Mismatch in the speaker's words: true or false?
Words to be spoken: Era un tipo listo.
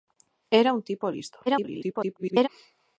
true